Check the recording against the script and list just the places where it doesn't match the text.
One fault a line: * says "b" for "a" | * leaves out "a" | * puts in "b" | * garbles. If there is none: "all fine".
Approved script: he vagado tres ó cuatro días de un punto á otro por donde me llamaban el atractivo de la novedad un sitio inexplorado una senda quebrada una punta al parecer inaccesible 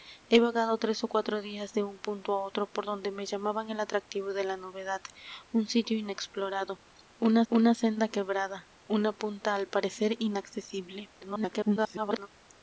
* puts in "una"
* garbles